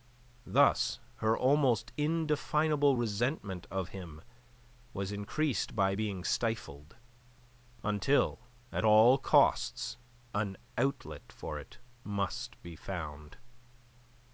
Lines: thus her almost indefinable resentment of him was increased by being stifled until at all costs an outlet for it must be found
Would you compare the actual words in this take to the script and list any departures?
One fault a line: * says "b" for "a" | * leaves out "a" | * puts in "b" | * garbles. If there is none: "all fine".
all fine